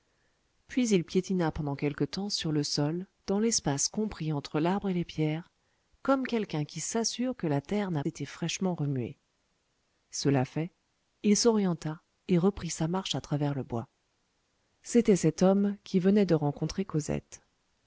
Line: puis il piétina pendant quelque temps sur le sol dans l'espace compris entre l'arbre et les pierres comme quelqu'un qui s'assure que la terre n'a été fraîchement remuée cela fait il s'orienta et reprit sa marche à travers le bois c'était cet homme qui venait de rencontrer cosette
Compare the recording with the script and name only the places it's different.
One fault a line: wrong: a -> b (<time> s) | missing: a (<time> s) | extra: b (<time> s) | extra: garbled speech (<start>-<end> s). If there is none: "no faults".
no faults